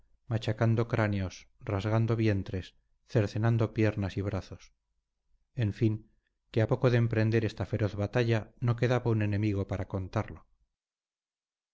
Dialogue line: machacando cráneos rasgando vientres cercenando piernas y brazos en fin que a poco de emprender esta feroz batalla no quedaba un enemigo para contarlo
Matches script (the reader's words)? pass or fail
pass